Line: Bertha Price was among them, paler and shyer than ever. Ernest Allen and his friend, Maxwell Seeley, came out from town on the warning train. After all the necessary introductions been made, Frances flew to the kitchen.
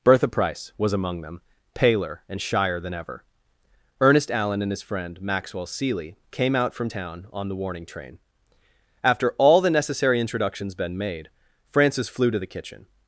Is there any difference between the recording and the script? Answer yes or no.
no